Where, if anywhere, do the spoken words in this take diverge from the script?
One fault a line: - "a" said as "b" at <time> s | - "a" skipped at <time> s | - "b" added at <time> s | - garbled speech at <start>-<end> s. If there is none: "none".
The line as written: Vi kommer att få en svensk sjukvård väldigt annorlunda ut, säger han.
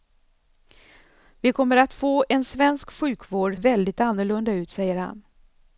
none